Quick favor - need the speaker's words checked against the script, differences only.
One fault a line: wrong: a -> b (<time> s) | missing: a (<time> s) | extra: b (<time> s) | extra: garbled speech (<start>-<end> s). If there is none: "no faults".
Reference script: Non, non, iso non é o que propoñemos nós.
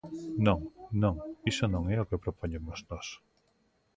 no faults